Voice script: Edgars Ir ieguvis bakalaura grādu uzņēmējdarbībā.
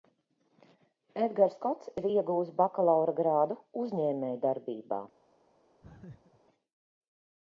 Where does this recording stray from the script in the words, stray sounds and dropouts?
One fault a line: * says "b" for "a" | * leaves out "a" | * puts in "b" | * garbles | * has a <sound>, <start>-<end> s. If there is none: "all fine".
* puts in "Kots"
* has a laugh, 5.8-6.4 s